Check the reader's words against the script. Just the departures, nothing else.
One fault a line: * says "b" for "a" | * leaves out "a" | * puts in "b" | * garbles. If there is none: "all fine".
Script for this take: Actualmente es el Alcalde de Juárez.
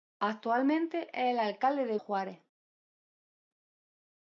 all fine